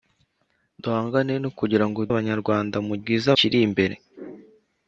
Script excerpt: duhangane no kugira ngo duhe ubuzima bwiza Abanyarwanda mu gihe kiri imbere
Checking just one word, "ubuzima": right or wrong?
wrong